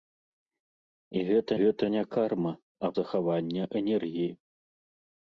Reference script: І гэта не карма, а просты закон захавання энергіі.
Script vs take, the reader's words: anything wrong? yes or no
yes